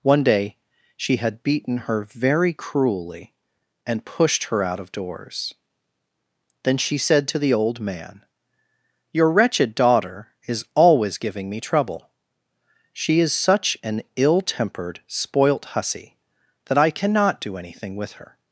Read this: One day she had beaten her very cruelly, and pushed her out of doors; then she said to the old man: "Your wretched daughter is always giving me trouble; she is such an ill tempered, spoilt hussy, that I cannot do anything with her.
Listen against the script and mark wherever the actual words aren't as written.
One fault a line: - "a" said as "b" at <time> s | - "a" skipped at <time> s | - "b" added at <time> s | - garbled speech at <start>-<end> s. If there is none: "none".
none